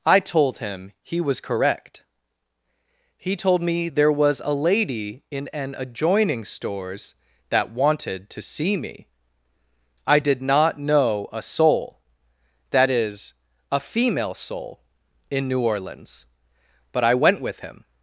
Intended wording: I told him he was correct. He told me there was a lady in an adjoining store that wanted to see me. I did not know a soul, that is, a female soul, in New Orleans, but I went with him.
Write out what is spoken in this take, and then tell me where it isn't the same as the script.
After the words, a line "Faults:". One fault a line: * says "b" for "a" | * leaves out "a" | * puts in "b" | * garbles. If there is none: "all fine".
I told him he was correct. He told me there was a lady in an adjoining stores that wanted to see me. I did not know a soul, that is, a female soul, in New Orleans, but I went with him.
Faults:
* says "stores" for "store"